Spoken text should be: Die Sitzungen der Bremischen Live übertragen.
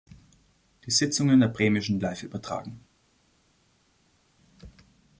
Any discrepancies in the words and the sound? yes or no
no